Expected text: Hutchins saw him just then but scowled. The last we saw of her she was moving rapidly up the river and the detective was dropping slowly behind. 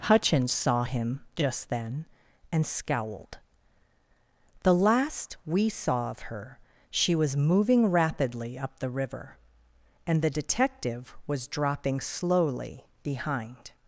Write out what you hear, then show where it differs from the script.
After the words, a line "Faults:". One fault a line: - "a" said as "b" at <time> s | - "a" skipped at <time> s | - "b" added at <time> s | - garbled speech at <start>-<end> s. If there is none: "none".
Hutchins saw him just then and scowled. The last we saw of her she was moving rapidly up the river and the detective was dropping slowly behind.
Faults:
- "but" said as "and" at 2.5 s